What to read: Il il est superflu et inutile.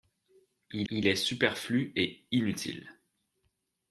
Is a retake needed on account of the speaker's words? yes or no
no